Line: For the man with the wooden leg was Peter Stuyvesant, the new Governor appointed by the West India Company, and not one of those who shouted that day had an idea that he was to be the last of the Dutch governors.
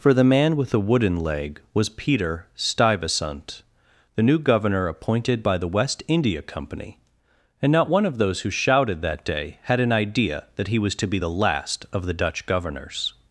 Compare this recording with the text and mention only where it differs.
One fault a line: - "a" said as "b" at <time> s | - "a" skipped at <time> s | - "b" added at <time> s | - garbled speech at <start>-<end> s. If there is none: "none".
none